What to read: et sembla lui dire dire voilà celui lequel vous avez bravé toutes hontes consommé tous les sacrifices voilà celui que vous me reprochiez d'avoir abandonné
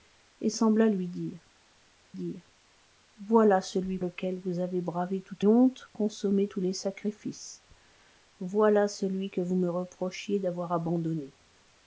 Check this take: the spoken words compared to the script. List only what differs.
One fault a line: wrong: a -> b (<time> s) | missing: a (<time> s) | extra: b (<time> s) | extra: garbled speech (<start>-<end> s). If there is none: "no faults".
no faults